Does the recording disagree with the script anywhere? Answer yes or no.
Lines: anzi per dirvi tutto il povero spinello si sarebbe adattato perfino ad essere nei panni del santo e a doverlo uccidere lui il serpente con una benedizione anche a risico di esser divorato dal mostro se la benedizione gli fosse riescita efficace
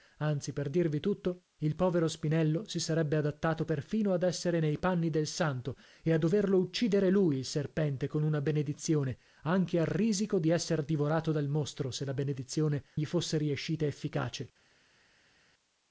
no